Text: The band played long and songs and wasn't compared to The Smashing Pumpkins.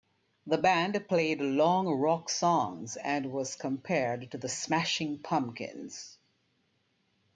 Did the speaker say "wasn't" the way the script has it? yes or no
no